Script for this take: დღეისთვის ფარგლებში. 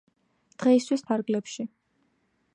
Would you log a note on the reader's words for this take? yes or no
no